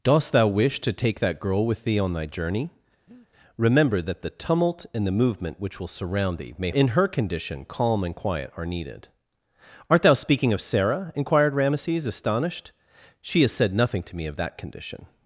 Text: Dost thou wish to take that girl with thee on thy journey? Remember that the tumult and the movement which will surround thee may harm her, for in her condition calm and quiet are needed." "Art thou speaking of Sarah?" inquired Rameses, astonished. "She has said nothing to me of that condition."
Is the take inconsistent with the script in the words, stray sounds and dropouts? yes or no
yes